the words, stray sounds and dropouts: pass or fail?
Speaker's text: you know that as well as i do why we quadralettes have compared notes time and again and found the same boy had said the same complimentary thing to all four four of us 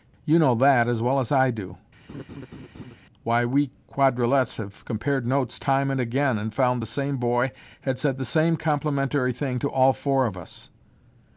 fail